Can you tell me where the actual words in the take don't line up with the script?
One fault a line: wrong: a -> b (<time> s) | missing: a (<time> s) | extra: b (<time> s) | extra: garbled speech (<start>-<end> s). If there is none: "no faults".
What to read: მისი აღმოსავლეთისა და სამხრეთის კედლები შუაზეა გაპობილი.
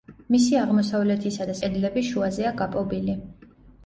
missing: სამხრეთის (1.6 s)